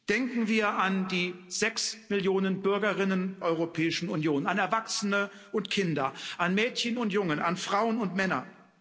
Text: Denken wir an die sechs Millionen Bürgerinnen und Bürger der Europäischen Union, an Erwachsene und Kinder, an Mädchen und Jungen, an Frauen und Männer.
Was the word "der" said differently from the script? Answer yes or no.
yes